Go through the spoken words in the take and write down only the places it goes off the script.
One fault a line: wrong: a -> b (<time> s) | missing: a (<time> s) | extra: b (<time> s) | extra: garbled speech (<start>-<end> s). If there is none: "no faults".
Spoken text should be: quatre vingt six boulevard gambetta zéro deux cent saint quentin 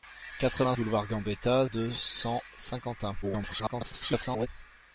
missing: six (0.8 s)
missing: zéro (1.7 s)
extra: garbled speech (3.2-4.5 s)